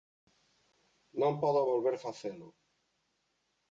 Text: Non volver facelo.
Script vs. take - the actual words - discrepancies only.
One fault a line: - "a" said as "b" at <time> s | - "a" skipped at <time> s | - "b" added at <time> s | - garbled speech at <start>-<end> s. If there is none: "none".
- "podo" added at 1.4 s